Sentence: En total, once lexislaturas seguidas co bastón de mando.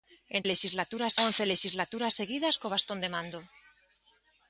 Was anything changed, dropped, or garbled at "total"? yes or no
yes